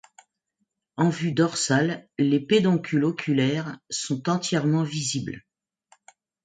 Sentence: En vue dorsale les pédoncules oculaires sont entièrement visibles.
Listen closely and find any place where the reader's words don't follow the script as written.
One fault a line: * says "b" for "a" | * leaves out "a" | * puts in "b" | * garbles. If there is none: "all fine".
all fine